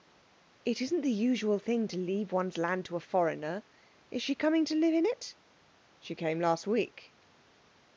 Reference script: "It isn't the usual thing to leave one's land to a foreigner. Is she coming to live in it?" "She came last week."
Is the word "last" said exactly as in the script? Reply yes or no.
yes